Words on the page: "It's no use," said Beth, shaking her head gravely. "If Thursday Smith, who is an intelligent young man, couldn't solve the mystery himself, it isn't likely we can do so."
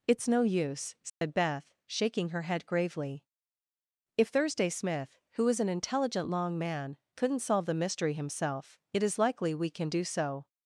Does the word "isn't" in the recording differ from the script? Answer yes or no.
yes